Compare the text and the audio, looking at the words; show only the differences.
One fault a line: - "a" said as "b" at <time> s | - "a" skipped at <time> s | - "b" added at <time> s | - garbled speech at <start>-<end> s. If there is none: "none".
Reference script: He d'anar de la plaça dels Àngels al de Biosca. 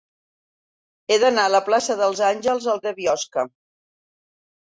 none